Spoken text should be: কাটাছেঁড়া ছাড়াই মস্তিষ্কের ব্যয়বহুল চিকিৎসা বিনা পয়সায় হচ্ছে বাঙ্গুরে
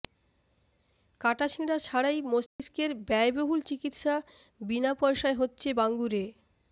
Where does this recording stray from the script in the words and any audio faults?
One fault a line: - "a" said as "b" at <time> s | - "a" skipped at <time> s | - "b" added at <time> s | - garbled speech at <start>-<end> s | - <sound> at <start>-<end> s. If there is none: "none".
- dropout at 2.5-2.6 s